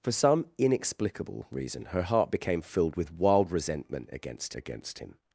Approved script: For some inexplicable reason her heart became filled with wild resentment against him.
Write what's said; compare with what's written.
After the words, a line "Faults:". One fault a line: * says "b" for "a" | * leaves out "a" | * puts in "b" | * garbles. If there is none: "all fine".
For some inexplicable reason her heart became filled with wild resentment against against him.
Faults:
* puts in "against"